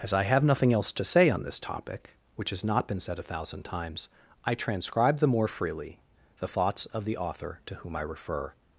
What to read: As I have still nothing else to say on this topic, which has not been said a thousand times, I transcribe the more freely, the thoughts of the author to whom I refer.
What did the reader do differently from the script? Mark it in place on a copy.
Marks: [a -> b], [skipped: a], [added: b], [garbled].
As I have [skipped: still] nothing else to say on this topic, which has not been said a thousand times, I transcribe the more freely, the thoughts of the author to whom I refer.